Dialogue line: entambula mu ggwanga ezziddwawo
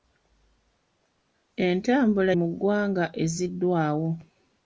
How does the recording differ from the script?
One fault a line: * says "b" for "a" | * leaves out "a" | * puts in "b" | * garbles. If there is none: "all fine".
all fine